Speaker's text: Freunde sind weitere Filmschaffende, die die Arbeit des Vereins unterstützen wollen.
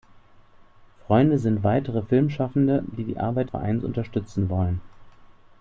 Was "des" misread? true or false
true